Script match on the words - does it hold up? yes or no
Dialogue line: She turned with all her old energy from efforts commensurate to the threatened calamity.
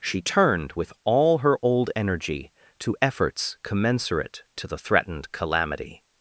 no